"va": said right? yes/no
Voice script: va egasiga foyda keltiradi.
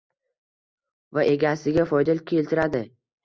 yes